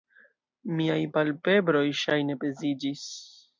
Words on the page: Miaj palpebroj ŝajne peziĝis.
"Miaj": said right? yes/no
yes